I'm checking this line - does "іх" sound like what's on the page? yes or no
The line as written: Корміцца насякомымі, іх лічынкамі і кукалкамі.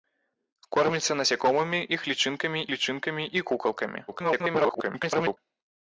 yes